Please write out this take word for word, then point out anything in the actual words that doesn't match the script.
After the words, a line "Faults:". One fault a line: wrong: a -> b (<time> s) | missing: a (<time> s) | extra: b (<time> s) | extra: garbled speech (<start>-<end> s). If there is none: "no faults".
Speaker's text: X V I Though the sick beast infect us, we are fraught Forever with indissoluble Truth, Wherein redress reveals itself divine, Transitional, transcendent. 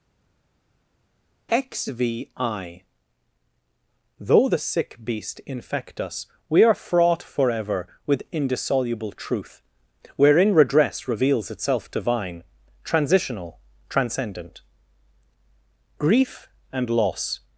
X V I Though the sick beast infect us, we are fraught Forever with indissoluble Truth, Wherein redress reveals itself divine, Transitional, transcendent. Grief and loss
Faults:
extra: Grief and loss (16.0 s)